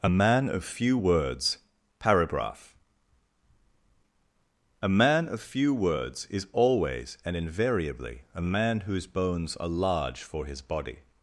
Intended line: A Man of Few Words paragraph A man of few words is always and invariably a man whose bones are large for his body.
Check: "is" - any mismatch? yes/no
no